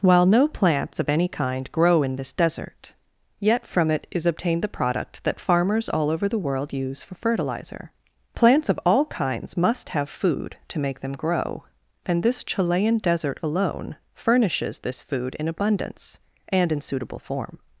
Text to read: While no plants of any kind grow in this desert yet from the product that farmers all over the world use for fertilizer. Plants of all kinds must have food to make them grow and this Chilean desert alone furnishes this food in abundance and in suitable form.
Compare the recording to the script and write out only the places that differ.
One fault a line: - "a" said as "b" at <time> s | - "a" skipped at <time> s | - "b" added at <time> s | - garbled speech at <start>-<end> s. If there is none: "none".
- "it is obtained" added at 3.9 s